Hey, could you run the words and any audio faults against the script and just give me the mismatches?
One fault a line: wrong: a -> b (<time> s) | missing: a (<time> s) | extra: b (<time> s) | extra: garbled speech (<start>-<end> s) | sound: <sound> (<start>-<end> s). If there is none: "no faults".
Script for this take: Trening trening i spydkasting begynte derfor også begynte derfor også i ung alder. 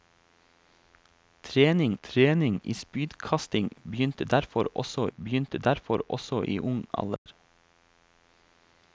sound: dropout (7.2-7.3 s)